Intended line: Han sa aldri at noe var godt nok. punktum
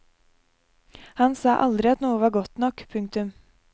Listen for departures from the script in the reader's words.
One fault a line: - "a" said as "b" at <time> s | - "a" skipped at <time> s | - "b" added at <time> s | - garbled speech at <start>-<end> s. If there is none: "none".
none